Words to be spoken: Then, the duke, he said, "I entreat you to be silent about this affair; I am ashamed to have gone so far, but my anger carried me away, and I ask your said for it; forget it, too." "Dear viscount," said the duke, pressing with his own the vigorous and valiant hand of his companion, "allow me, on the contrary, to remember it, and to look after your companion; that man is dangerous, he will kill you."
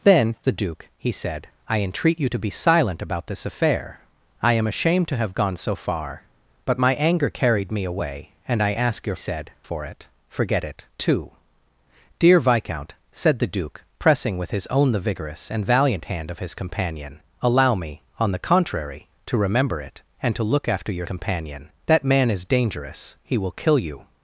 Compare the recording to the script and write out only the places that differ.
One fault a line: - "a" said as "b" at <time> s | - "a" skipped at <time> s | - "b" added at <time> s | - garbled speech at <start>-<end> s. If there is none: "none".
none